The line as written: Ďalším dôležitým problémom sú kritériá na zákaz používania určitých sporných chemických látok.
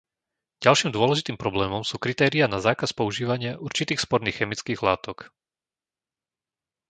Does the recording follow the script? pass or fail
pass